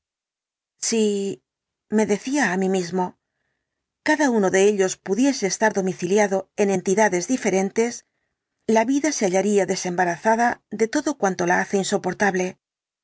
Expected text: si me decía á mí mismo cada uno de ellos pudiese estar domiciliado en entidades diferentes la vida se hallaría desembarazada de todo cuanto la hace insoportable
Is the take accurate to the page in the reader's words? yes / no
yes